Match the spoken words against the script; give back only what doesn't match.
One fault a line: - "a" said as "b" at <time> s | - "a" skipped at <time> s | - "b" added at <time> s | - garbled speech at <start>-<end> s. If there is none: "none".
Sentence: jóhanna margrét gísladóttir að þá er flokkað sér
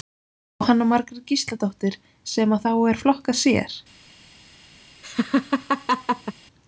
- "sem" added at 2.4 s